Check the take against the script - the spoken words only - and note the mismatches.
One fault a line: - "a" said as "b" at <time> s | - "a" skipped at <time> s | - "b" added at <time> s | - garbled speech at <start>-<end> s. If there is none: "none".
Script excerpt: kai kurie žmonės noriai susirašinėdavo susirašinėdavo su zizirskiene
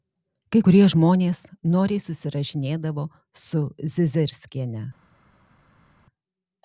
- "susirašinėdavo" skipped at 3.1 s